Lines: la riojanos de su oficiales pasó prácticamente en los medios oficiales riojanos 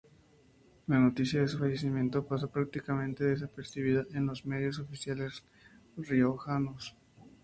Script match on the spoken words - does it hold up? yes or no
no